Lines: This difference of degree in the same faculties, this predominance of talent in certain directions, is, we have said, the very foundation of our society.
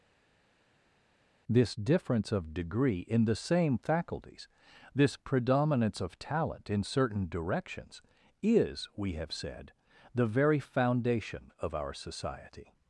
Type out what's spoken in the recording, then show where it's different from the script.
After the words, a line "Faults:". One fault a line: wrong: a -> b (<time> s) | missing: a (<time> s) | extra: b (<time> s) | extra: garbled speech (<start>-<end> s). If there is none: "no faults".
This difference of degree in the same faculties, this predominance of talent in certain directions, is, we have said, the very foundation of our society.
Faults:
no faults